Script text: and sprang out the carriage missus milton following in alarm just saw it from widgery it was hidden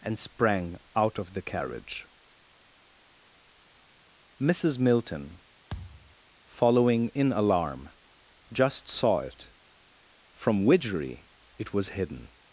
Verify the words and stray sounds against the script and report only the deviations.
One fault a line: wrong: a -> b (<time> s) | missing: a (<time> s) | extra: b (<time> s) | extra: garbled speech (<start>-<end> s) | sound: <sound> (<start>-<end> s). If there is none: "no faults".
extra: of (1.2 s)
sound: thud (5.7-6.2 s)